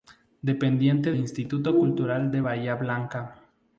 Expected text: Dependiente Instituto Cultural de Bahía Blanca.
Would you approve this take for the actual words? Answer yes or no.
yes